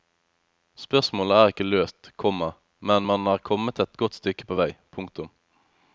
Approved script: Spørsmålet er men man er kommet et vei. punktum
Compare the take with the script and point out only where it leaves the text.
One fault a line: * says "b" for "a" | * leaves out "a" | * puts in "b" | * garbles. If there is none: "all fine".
* puts in "ikke løst komma"
* puts in "godt stykke på"